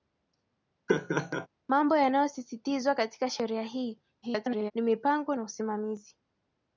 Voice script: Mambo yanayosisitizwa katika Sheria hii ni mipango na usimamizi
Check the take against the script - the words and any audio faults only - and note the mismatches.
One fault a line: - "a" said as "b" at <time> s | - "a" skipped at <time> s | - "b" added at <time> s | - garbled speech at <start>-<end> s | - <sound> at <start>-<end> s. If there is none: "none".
- laugh at 0.9-1.5 s
- garbled speech at 4.2-4.7 s